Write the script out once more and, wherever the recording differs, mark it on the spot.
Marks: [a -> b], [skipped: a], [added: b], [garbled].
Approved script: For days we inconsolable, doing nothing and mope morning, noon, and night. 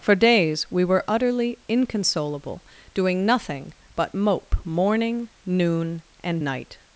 For days we [added: were utterly] inconsolable, doing nothing [and -> but] mope morning, noon, and night.